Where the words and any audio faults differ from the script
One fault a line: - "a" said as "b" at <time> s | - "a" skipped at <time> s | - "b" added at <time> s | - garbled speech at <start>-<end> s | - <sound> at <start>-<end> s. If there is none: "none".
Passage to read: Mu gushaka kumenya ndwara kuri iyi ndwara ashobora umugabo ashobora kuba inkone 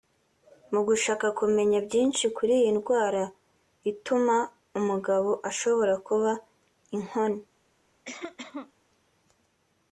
- "ndwara" said as "byinshi" at 1.9 s
- "ashobora" said as "ituma" at 3.9 s
- cough at 8.0-8.7 s